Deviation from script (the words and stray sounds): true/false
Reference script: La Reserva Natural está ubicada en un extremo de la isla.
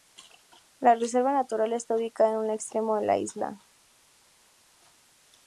false